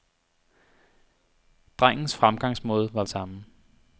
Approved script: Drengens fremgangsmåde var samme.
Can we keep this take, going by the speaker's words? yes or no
yes